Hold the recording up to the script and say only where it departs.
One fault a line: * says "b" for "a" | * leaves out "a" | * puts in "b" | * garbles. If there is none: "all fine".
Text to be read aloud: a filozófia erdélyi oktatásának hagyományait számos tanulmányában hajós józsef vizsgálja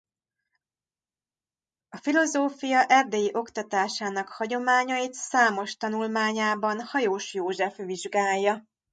all fine